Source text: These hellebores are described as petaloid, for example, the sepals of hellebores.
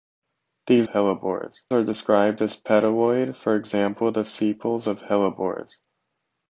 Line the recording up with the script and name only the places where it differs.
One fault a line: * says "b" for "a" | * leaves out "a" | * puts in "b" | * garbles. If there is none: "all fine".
all fine